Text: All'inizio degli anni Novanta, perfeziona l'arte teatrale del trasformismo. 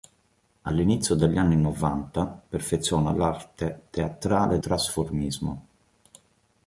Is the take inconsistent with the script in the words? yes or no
yes